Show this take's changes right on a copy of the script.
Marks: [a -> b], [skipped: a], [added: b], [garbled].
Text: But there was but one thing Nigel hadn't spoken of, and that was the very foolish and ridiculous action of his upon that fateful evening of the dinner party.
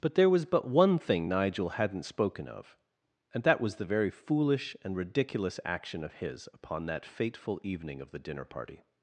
But there was but one thing Nigel hadn't spoken of, and that was the very foolish and ridiculous action of his upon that fateful evening of the dinner party.